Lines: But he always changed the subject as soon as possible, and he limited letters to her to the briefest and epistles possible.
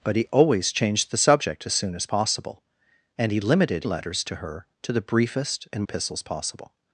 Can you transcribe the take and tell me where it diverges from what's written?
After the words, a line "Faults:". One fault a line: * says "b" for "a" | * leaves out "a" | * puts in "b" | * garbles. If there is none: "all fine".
But he always changed the subject as soon as possible, and he limited letters to her to the briefest and epistles possible.
Faults:
all fine